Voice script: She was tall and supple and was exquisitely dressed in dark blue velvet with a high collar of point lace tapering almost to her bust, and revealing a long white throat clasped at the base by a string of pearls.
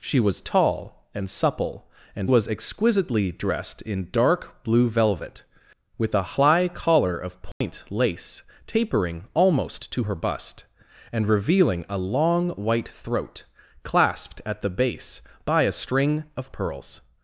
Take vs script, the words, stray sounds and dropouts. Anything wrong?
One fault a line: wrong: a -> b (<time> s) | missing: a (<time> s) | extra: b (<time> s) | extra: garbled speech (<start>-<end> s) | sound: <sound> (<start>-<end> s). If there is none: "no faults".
sound: dropout (7.5-7.6 s)